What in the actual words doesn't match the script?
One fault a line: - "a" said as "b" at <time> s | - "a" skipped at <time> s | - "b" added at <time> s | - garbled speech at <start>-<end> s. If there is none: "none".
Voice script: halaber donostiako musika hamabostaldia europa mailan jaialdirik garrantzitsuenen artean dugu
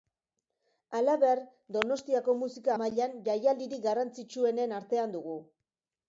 - "hamabostaldia europa" skipped at 2.7 s